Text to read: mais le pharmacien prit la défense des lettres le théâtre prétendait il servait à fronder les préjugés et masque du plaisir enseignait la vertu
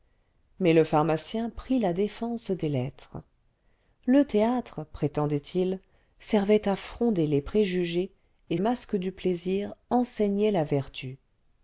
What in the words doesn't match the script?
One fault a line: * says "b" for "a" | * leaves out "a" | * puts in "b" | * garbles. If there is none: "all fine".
all fine